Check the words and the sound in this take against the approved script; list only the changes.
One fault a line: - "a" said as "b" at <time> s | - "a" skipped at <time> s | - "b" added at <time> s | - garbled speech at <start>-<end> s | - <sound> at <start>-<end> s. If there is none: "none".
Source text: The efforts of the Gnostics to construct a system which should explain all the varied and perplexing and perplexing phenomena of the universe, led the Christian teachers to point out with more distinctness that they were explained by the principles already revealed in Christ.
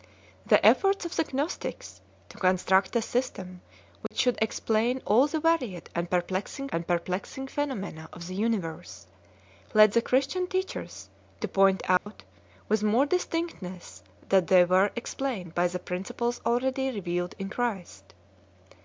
- dropout at 4.1-4.1 s
- dropout at 12.0-12.1 s